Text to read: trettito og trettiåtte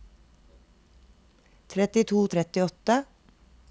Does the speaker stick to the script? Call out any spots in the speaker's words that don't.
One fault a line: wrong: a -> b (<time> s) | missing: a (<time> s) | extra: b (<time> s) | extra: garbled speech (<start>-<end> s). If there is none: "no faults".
no faults